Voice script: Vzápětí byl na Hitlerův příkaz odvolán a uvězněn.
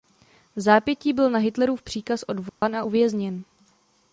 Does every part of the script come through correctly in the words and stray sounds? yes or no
no